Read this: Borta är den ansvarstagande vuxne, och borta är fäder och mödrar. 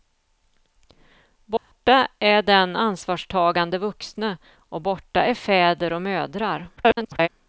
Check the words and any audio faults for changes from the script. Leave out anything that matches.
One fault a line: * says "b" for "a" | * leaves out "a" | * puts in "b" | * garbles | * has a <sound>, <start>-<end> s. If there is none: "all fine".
* has a dropout, 1.6-1.7 s
* garbles